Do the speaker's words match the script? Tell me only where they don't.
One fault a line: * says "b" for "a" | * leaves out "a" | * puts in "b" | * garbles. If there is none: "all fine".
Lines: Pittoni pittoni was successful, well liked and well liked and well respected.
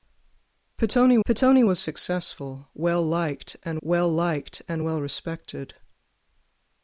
all fine